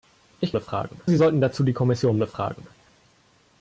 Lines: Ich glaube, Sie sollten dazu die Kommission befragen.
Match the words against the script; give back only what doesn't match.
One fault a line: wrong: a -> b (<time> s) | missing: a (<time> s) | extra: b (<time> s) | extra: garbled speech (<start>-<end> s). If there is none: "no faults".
wrong: glaube -> befragen (0.5 s)